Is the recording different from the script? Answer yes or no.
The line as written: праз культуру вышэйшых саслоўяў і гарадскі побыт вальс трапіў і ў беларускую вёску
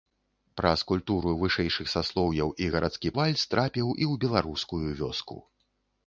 yes